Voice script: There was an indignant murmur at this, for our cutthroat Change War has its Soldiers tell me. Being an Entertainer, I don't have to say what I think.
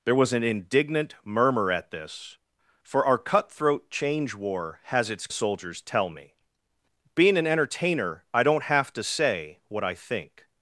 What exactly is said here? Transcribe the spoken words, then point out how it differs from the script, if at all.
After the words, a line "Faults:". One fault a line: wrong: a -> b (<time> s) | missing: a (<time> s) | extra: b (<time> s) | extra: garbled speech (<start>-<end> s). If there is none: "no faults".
There was an indignant murmur at this, for our cutthroat Change War has its Soldiers tell me. Being an Entertainer, I don't have to say what I think.
Faults:
no faults